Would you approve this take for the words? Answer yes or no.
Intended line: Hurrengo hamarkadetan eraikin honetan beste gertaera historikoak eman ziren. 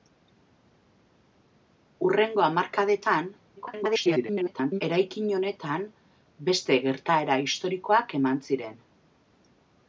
no